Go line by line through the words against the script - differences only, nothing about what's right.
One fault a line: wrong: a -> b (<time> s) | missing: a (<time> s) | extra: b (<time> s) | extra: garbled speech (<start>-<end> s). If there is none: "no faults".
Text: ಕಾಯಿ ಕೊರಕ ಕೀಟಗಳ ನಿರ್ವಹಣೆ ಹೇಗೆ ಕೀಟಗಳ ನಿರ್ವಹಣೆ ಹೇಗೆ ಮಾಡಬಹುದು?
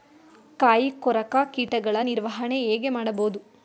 missing: ಕೀಟಗಳ ನಿರ್ವಹಣೆ ಹೇಗೆ (2.9 s)